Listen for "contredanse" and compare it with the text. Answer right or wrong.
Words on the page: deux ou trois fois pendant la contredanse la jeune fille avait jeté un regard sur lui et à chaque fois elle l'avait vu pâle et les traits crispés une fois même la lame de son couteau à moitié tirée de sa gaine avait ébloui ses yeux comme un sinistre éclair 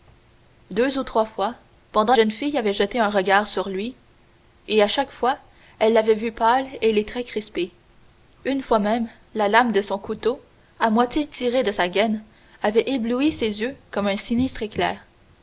wrong